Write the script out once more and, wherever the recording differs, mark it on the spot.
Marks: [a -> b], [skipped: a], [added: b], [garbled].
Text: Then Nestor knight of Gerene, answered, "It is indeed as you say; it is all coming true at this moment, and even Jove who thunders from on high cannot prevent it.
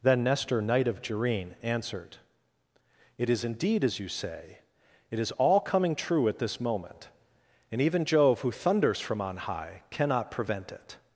Then Nestor knight of Gerene, answered, "It is indeed as you say; it is all coming true at this moment, and even Jove who thunders from on high cannot prevent it.